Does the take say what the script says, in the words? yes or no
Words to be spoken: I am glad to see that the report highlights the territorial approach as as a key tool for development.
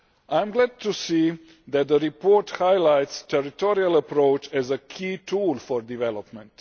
no